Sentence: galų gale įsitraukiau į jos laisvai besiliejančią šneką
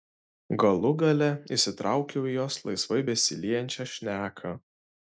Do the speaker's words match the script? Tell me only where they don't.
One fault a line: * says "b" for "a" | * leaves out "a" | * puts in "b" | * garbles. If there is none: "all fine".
all fine